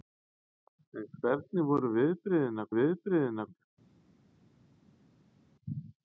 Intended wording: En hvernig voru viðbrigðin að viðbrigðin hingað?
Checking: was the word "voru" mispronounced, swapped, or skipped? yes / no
no